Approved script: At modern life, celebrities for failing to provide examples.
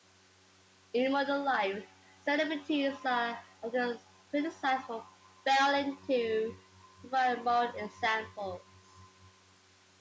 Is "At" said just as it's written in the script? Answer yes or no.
no